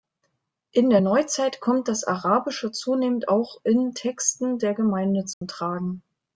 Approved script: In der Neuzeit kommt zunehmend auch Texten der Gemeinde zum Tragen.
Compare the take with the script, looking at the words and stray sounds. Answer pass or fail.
fail